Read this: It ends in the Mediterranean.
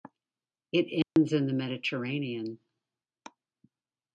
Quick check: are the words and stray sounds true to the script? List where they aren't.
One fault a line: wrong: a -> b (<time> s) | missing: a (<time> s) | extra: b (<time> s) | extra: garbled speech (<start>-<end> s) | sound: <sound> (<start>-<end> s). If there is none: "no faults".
sound: dropout (1.0-1.2 s)